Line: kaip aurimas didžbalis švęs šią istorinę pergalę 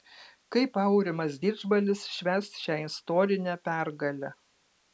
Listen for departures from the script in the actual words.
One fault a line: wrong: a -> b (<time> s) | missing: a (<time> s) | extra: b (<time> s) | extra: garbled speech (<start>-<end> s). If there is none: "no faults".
no faults